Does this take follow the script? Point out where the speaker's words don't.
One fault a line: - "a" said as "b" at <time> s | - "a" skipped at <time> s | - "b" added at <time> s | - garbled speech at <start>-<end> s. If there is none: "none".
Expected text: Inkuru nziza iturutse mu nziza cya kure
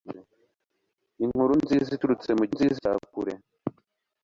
none